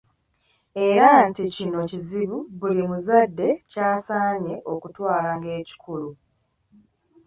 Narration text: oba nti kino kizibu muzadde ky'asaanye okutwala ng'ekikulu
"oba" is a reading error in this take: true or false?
true